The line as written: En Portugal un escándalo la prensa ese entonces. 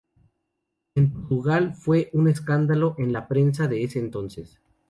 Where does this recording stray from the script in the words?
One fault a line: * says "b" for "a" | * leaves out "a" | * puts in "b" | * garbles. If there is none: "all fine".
* puts in "fue"
* puts in "en"
* puts in "de"